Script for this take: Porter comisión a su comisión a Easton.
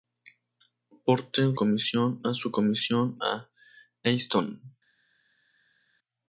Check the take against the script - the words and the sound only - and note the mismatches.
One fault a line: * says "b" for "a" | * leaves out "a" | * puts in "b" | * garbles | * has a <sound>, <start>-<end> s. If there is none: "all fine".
all fine